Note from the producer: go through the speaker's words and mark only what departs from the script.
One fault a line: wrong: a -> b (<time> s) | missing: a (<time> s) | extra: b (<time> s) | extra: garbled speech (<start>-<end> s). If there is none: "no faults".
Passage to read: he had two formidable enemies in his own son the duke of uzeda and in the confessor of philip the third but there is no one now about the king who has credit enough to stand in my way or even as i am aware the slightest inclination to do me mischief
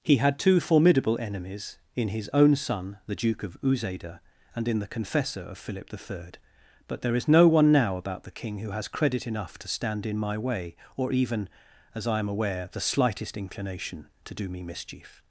no faults